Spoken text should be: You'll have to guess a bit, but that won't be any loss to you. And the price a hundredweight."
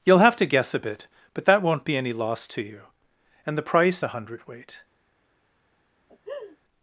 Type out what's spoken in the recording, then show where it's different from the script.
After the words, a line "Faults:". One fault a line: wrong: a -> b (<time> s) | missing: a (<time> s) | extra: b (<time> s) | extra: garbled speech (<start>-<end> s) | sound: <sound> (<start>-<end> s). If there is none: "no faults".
You'll have to guess a bit, but that won't be any loss to you. And the price a hundredweight."
Faults:
sound: laugh (6.1-6.6 s)